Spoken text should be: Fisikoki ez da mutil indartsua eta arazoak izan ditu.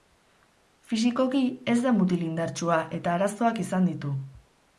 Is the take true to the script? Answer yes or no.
yes